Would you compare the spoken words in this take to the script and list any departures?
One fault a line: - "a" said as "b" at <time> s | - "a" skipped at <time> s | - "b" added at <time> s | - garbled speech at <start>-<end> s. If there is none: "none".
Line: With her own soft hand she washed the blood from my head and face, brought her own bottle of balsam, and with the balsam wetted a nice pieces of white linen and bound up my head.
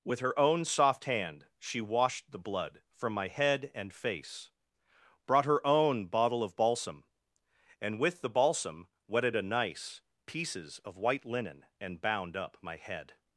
none